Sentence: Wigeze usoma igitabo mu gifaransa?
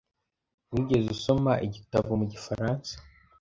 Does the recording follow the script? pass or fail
pass